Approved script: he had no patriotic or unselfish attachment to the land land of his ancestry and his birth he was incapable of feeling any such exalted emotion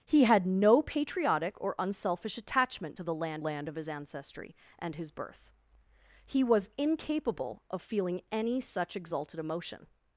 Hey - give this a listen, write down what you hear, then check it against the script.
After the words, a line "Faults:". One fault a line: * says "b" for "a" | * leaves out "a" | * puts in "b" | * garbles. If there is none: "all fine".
he had no patriotic or unselfish attachment to the land land of his ancestry and his birth he was incapable of feeling any such exalted emotion
Faults:
all fine